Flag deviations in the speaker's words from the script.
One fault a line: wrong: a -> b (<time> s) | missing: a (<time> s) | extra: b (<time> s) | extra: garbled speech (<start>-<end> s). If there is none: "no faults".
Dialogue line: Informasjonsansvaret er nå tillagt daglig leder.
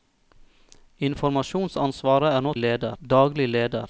wrong: tillagt -> leder (2.6 s)